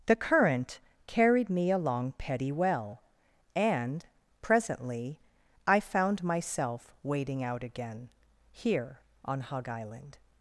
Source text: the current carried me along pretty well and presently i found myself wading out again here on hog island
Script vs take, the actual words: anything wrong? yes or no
yes